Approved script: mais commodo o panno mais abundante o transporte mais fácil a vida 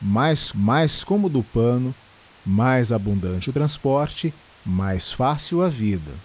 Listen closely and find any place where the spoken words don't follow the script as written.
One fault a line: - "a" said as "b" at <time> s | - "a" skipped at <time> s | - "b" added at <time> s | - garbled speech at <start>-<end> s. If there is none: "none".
- "mais" added at 0.6 s